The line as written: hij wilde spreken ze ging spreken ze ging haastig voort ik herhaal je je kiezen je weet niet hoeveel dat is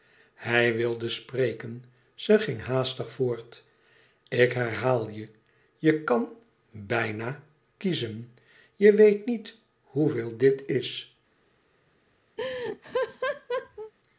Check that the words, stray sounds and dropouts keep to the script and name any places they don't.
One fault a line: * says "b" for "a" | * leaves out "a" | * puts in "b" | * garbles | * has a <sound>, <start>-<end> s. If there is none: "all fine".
* leaves out "spreken ze ging"
* puts in "kan bijna"
* says "dit" for "dat"
* has a laugh, 12.4-13.9 s